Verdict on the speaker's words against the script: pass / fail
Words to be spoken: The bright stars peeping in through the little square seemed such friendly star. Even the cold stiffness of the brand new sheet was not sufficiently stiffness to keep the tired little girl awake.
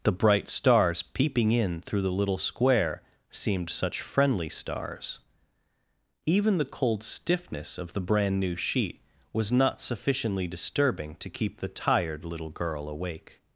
fail